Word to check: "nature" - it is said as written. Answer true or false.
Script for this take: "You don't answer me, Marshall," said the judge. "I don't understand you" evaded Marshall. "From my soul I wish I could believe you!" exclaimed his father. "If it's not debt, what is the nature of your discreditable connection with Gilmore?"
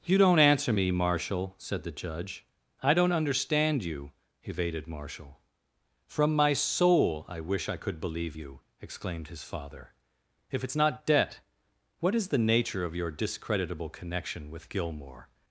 true